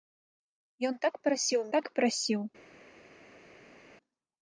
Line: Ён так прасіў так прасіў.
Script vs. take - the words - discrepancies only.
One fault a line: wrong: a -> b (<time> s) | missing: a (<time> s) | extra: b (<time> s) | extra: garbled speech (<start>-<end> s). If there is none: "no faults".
no faults